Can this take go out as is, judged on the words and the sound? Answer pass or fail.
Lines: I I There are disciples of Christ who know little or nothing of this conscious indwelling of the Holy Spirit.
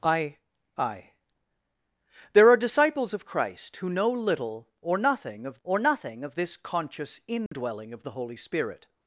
fail